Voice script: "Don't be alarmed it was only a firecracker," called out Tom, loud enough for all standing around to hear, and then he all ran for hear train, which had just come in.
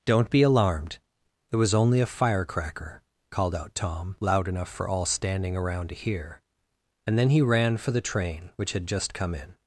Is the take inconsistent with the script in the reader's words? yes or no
yes